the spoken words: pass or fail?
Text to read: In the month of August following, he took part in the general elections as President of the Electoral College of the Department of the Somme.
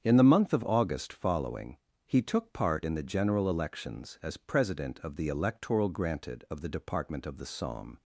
fail